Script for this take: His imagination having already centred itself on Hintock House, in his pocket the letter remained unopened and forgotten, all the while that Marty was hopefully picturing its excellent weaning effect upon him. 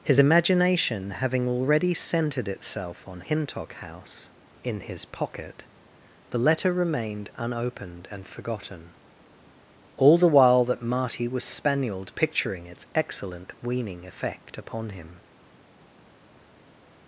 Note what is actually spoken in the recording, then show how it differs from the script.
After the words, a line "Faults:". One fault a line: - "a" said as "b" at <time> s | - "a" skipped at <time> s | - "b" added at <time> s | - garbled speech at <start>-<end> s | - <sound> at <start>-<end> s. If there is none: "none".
His imagination having already centred itself on Hintock House, in his pocket the letter remained unopened and forgotten, all the while that Marty was spanielled picturing its excellent weaning effect upon him.
Faults:
- "hopefully" said as "spanielled" at 11.4 s